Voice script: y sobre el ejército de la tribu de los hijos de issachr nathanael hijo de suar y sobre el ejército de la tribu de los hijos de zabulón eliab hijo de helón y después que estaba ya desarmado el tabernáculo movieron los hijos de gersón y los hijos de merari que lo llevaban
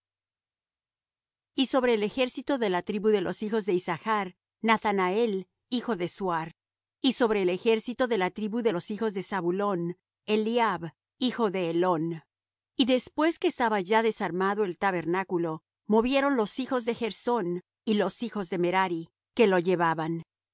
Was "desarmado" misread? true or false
false